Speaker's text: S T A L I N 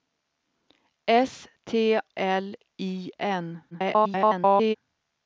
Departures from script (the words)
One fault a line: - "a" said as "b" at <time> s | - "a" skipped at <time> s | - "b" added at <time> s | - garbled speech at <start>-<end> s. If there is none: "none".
- "A" skipped at 1.9 s
- garbled speech at 3.7-4.7 s